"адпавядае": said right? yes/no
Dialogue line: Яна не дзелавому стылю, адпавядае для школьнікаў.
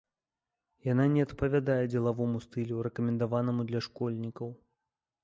no